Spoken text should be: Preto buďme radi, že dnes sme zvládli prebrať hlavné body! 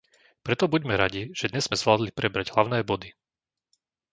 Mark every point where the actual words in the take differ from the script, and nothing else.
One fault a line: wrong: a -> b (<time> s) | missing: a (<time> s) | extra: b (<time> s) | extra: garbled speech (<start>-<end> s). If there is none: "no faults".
no faults